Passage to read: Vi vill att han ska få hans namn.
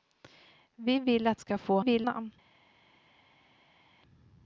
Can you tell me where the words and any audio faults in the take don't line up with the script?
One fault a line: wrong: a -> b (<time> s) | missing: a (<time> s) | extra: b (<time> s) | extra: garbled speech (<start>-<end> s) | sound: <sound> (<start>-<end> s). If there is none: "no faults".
missing: han (1.4 s)
wrong: hans -> vill (1.8 s)